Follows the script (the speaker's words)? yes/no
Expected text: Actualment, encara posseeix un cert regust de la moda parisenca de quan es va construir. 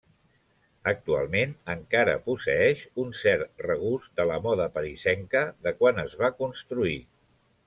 yes